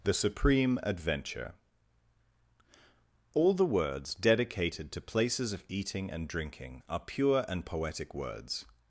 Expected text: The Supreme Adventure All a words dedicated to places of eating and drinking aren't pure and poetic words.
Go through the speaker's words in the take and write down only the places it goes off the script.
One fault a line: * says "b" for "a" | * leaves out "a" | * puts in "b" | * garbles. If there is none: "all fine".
* says "the" for "a"
* says "are" for "aren't"